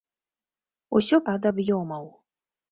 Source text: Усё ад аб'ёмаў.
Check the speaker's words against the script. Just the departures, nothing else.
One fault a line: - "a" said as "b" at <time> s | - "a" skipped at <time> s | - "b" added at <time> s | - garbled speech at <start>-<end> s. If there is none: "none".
none